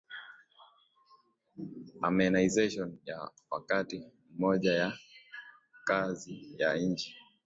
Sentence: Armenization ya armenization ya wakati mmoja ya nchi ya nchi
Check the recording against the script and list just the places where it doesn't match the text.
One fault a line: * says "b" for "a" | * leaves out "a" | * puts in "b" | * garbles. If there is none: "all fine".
* leaves out "armenization ya"
* says "kazi" for "nchi"